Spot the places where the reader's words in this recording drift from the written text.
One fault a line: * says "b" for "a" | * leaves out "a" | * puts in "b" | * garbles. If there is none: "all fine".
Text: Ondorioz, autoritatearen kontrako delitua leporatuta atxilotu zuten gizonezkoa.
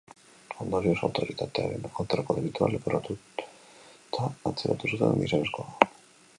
all fine